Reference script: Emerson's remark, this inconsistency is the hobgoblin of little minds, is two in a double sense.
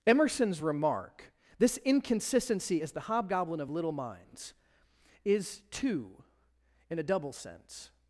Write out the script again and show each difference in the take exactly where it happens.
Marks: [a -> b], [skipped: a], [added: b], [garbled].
Emerson's remark, this inconsistency is the hobgoblin of little minds, is two in a double sense.